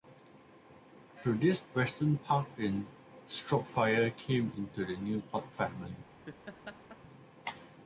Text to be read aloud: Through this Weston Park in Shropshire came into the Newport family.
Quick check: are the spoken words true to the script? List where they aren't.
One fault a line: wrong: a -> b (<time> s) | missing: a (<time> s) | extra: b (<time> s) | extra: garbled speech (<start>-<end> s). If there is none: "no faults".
no faults